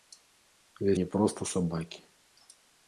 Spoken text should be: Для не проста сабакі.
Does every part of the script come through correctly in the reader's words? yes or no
yes